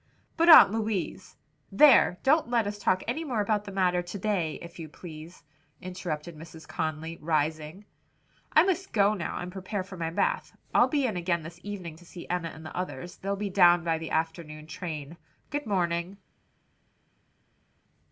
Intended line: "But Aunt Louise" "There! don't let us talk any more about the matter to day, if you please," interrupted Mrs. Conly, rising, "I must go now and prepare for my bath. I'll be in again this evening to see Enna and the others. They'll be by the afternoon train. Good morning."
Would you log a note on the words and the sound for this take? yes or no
yes